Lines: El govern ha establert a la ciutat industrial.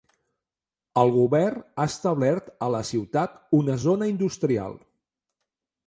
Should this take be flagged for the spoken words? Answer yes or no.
yes